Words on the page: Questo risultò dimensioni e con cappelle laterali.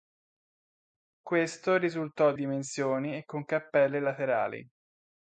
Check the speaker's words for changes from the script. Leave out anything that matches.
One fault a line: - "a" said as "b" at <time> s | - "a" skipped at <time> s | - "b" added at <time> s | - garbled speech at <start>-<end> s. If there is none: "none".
none